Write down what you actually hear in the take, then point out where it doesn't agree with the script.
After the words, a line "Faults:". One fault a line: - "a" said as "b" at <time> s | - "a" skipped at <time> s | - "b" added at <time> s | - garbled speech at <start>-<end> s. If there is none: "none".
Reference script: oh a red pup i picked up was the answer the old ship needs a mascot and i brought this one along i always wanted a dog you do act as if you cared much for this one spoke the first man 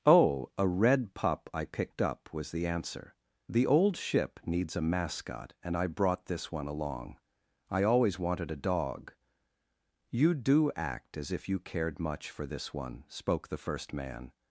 oh a red pup i picked up was the answer the old ship needs a mascot and i brought this one along i always wanted a dog you do act as if you cared much for this one spoke the first man
Faults:
none